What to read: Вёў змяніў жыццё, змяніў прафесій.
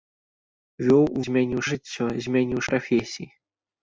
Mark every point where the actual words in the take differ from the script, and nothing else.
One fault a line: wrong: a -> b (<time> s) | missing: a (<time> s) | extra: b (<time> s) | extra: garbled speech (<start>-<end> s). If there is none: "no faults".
no faults